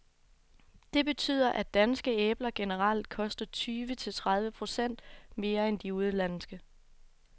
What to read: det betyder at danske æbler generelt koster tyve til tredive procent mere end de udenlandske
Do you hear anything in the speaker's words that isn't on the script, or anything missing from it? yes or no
no